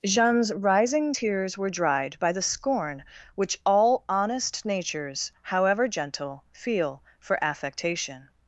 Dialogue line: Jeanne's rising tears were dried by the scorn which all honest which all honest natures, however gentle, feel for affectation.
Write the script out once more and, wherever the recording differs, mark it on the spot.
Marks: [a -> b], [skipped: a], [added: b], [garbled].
Jeanne's rising tears were dried by the scorn which all honest [skipped: which all honest] natures, however gentle, feel for affectation.